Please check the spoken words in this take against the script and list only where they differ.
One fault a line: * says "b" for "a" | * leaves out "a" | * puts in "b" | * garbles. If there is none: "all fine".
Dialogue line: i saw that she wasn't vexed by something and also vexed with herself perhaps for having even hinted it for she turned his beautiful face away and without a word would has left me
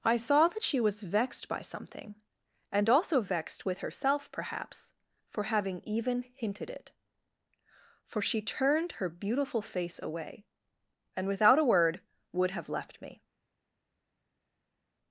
* says "was" for "wasn't"
* says "her" for "his"
* says "have" for "has"